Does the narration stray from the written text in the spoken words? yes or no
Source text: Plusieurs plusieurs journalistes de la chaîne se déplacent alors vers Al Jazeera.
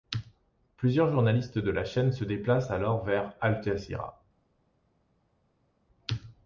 yes